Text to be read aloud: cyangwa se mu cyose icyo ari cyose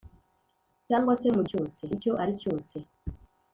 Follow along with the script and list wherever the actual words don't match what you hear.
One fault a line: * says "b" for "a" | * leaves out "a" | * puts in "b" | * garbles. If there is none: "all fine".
all fine